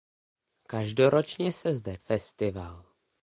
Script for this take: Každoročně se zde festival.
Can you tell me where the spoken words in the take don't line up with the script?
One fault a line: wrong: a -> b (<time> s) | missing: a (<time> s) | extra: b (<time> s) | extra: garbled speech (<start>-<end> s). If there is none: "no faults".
no faults